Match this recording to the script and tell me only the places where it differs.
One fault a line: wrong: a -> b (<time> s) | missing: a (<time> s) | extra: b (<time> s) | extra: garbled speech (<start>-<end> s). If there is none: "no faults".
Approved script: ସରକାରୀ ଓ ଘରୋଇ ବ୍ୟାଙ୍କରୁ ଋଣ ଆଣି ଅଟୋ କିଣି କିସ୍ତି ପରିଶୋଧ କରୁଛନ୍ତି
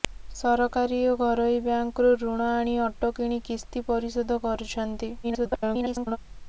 extra: garbled speech (5.2-6.2 s)